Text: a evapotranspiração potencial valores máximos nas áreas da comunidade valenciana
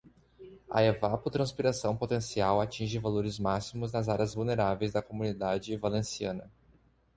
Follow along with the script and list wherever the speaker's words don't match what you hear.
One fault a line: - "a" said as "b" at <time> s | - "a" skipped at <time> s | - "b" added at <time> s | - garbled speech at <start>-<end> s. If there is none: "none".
- "atinge" added at 2.6 s
- "vulneráveis" added at 4.3 s